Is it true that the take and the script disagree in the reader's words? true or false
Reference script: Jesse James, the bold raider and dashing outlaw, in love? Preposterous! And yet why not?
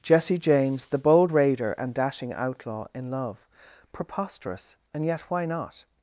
false